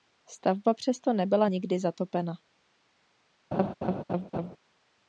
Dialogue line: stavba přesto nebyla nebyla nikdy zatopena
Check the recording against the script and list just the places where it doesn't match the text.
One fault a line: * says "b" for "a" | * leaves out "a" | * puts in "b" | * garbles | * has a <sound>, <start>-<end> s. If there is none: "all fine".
* leaves out "nebyla"
* has a laugh, 3.5-4.6 s